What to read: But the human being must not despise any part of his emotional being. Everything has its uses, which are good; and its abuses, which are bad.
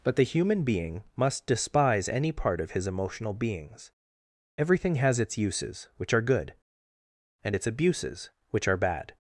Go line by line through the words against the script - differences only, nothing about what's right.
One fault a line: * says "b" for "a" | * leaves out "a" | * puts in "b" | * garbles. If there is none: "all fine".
* leaves out "not"
* says "beings" for "being"